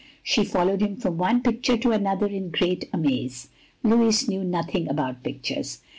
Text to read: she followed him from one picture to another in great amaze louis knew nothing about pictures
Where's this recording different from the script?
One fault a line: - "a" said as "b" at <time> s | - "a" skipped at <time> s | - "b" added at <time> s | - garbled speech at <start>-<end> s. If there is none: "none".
none